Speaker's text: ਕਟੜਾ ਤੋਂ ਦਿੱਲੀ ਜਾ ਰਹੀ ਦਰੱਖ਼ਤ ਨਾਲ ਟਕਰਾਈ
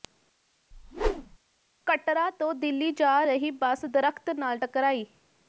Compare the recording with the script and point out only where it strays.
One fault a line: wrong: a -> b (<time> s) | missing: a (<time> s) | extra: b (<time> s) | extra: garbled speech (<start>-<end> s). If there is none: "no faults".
extra: ਬੱਸ (3.5 s)